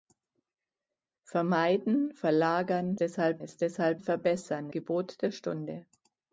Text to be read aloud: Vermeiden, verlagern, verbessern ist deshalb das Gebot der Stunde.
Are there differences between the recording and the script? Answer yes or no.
yes